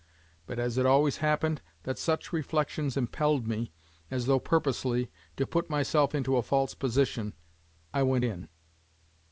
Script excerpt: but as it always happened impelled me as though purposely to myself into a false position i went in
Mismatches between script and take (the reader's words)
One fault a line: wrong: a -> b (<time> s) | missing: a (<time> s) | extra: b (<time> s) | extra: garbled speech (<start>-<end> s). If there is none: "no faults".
extra: that such reflections (1.8 s)
extra: put (5.5 s)